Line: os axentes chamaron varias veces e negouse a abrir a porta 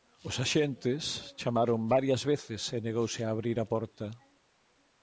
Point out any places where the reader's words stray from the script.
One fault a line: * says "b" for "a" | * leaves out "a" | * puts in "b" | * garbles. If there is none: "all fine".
all fine